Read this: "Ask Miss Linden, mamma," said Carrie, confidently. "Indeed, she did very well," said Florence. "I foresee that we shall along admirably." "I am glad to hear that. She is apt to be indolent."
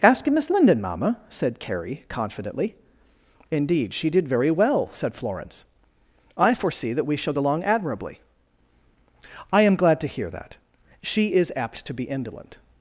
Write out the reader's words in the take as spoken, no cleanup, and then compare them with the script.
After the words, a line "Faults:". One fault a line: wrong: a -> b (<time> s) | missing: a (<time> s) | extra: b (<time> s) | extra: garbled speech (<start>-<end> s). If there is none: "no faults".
"Ask Miss Linden, mamma," said Carrie, confidently. "Indeed, she did very well," said Florence. "I foresee that we shall along admirably." "I am glad to hear that. She is apt to be indolent."
Faults:
no faults